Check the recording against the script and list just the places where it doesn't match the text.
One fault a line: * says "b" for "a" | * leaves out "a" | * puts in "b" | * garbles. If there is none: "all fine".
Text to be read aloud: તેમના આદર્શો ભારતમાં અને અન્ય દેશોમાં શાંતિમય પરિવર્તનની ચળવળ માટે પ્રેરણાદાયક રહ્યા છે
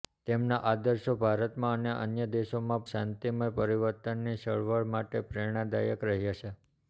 all fine